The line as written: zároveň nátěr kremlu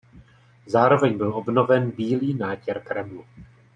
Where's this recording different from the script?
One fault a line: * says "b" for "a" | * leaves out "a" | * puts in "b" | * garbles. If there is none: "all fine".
* puts in "byl obnoven bílý"